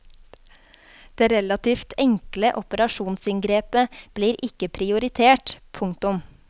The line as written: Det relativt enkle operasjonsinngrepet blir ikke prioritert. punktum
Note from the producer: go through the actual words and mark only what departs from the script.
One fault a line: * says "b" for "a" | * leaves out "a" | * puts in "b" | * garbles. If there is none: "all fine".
all fine